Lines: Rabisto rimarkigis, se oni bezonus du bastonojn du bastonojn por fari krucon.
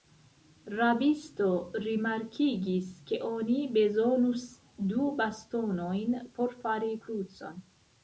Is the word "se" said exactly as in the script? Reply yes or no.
no